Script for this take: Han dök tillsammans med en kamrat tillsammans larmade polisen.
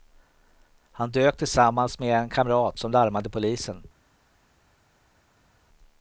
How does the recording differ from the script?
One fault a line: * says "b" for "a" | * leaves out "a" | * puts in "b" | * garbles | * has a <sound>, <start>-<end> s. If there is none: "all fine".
* says "som" for "tillsammans"